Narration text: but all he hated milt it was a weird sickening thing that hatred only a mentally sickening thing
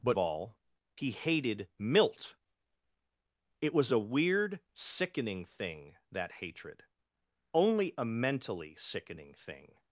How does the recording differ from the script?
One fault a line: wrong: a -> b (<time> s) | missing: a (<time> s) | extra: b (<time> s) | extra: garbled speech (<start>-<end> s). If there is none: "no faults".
no faults